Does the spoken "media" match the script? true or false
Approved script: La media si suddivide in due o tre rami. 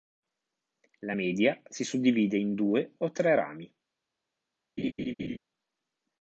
true